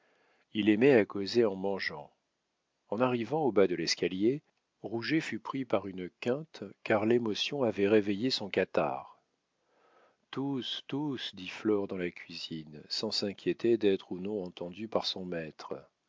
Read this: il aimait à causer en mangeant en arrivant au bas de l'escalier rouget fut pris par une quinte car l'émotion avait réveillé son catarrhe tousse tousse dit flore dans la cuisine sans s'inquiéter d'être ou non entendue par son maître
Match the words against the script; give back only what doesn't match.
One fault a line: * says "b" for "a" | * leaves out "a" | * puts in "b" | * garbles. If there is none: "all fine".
all fine